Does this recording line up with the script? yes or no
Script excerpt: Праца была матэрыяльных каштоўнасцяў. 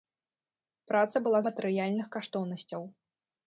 yes